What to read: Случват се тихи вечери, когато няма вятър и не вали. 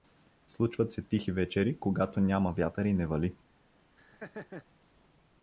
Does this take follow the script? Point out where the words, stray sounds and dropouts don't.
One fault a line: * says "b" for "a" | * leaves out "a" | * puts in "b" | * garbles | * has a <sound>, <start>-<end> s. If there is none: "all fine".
* has a laugh, 4.0-4.7 s